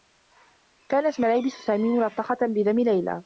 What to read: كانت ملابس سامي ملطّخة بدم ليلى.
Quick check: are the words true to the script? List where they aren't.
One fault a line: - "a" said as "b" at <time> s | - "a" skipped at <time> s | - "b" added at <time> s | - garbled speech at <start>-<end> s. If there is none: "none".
none